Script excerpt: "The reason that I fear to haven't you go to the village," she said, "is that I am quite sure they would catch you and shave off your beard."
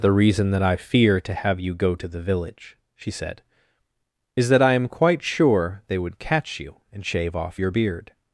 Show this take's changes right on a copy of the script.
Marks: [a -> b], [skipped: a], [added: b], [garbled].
"The reason that I fear to [haven't -> have] you go to the village," she said, "is that I am quite sure they would catch you and shave off your beard."